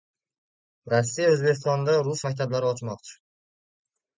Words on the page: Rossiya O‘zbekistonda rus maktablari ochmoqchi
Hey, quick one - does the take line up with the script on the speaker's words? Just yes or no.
yes